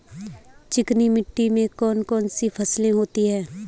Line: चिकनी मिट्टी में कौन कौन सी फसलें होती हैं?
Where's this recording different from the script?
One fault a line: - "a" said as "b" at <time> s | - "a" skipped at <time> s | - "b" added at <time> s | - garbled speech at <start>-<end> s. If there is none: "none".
none